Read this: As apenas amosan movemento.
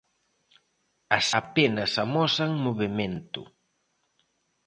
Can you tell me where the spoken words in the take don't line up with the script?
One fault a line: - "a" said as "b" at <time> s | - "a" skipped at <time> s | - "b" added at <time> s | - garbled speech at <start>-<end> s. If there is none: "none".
none